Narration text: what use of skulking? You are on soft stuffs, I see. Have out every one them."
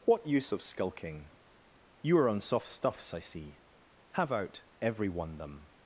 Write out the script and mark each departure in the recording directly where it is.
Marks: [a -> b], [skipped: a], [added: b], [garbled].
what use of skulking? You are on soft stuffs, I see. Have out every one them."